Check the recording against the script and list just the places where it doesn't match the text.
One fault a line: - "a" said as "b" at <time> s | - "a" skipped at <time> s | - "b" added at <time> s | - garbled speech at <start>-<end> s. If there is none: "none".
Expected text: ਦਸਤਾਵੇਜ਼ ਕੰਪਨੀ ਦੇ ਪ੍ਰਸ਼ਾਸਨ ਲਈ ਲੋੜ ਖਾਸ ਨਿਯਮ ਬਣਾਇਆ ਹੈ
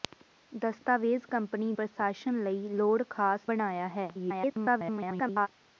- "ਦੇ" skipped at 1.7 s
- "ਨਿਯਮ" skipped at 3.5 s
- garbled speech at 4.1-5.5 s